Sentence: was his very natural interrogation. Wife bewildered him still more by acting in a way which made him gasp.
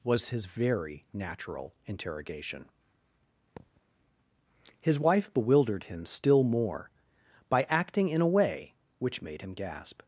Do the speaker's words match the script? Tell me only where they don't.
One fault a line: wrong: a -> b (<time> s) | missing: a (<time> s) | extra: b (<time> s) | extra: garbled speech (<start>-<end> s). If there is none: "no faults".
extra: His (4.8 s)